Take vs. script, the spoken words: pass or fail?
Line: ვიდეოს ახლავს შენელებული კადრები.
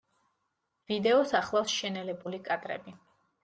pass